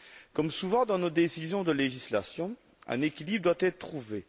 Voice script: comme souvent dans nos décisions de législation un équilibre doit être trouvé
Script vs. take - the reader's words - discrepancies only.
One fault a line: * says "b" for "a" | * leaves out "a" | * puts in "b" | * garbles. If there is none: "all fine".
all fine